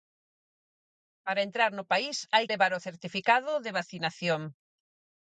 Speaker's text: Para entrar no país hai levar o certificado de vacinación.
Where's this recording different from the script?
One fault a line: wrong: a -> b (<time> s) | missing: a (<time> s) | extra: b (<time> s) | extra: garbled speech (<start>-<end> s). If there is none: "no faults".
no faults